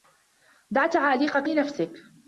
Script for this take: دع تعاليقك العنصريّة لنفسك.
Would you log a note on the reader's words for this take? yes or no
yes